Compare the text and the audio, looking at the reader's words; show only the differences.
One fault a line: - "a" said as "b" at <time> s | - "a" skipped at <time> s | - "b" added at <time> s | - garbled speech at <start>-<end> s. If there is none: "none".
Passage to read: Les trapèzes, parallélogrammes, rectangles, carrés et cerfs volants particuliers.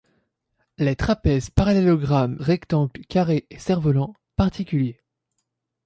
none